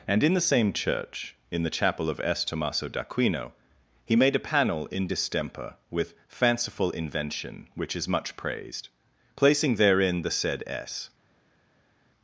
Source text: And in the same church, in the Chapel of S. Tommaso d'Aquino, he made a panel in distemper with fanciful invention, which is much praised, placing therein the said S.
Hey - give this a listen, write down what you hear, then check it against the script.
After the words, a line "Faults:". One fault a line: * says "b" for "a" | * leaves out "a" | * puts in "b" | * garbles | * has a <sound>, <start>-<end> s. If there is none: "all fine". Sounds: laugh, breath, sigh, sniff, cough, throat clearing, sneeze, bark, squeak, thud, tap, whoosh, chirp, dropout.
And in the same church, in the Chapel of S. Tommaso d'Aquino, he made a panel in distemper with fanciful invention, which is much praised, placing therein the said S.
Faults:
all fine